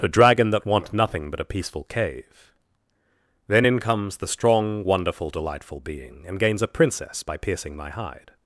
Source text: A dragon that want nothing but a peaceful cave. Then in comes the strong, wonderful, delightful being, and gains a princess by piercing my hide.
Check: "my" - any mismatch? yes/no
no